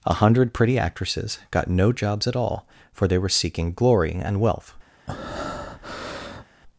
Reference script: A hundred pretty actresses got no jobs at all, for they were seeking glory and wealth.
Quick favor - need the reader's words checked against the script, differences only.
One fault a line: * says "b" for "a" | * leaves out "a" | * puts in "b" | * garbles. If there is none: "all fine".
all fine